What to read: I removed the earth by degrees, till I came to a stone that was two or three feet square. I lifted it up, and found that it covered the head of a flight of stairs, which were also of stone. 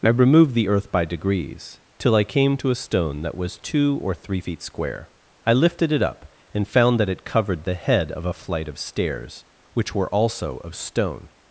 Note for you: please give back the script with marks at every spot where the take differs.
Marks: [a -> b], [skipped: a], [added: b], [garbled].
I removed the earth by degrees, till I came to a stone that was two or three feet square. I lifted it up, and found that it covered the head of a flight of stairs, which were also of stone.